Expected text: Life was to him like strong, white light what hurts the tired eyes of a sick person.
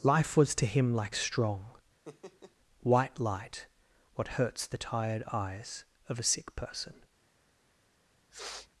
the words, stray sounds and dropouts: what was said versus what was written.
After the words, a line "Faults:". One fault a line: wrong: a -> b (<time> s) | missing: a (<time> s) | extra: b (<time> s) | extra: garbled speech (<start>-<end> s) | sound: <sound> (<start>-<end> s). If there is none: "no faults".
Life was to him like strong, white light what hurts the tired eyes of a sick person.
Faults:
sound: laugh (2.0-2.6 s)
sound: sniff (8.3-8.7 s)